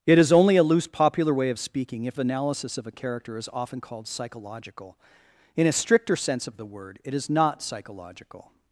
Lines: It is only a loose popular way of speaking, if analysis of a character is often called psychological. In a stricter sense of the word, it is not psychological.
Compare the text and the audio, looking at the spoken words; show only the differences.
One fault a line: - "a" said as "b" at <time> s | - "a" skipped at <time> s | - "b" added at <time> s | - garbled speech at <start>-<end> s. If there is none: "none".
none